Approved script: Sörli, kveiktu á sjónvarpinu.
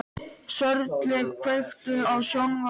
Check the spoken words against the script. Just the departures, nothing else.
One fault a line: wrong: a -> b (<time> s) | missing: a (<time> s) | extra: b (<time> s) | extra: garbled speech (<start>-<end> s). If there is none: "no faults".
no faults